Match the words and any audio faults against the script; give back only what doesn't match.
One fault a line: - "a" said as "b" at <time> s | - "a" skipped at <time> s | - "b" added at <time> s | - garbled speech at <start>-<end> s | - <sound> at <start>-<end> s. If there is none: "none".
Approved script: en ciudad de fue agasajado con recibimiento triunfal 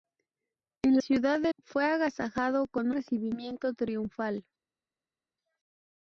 none